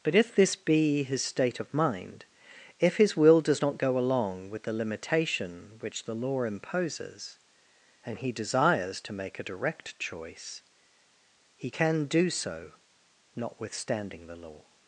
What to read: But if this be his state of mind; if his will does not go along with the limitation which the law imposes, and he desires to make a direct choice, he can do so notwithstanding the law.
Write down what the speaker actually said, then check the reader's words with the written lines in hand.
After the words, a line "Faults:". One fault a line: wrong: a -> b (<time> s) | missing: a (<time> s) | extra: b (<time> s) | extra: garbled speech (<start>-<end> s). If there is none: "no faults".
But if this be his state of mind; if his will does not go along with the limitation which the law imposes, and he desires to make a direct choice, he can do so notwithstanding the law.
Faults:
no faults